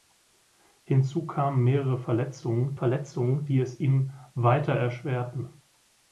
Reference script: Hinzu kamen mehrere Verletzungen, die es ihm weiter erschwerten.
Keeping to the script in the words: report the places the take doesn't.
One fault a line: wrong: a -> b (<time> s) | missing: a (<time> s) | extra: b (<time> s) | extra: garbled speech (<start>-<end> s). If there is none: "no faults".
extra: Verletzungen (2.7 s)